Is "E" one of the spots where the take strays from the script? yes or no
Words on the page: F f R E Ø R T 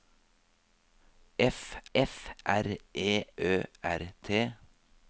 no